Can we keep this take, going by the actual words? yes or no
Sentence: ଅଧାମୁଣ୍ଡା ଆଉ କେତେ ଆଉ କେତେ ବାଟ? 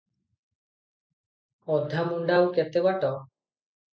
no